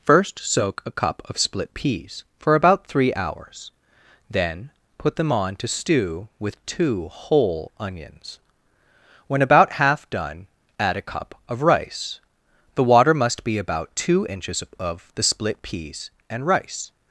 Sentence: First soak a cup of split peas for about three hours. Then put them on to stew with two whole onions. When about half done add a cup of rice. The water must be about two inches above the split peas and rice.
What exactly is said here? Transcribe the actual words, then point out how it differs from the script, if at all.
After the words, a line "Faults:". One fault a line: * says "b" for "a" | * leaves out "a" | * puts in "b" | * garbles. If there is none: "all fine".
First soak a cup of split peas for about three hours. Then put them on to stew with two whole onions. When about half done add a cup of rice. The water must be about two inches of the split peas and rice.
Faults:
* says "of" for "above"